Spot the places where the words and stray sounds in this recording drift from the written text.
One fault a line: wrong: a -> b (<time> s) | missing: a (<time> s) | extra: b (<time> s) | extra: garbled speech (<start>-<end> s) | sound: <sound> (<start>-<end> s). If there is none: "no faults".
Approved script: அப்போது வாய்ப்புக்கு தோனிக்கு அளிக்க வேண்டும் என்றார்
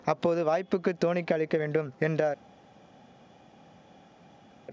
no faults